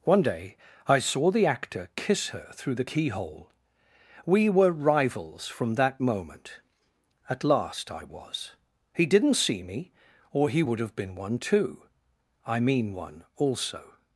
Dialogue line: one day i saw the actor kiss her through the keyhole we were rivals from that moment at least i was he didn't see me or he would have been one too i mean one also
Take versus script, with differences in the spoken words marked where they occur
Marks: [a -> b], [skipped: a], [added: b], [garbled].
one day i saw the actor kiss her through the keyhole we were rivals from that moment at [least -> last] i was he didn't see me or he would have been one too i mean one also